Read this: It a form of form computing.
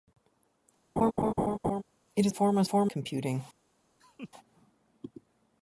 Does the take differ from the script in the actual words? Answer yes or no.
no